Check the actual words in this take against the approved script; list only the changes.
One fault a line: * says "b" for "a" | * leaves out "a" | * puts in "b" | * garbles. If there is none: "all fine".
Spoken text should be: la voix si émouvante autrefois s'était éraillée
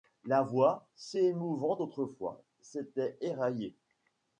all fine